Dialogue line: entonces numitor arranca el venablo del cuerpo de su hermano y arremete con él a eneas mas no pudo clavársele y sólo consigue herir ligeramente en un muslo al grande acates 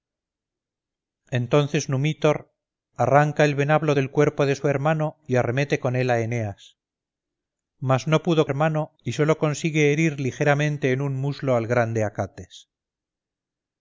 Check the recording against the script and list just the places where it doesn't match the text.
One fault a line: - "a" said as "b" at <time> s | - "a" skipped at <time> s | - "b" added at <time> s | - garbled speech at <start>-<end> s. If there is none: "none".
- "clavársele" said as "hermano" at 8.4 s